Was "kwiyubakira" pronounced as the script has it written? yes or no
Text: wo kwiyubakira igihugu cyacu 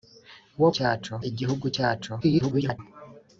no